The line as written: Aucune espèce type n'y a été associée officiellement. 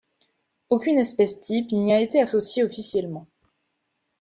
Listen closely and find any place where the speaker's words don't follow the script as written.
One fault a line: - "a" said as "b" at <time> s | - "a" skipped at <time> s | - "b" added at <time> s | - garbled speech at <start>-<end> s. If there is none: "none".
none